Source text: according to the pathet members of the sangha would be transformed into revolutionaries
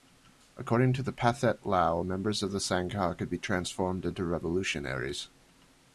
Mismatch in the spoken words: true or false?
true